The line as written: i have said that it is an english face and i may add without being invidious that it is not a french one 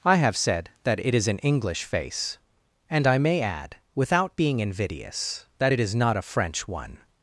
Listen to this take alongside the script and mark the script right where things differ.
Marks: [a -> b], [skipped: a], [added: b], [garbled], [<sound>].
i have said that it is an english face and i may add without being invidious that it is not a french one